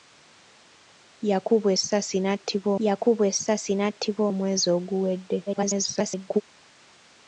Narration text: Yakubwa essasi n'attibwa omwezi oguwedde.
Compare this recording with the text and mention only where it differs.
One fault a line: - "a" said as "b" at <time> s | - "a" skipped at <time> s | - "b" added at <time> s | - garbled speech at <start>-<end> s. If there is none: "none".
- "yakubwa essasi n'attibwa" added at 2.9 s
- garbled speech at 5.5-6.4 s